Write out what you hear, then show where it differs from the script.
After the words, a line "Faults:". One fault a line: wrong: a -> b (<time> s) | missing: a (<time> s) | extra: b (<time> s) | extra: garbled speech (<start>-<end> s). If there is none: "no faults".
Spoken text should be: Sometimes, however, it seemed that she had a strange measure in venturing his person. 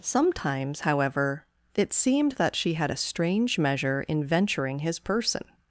Sometimes, however, it seemed that she had a strange measure in venturing his person.
Faults:
no faults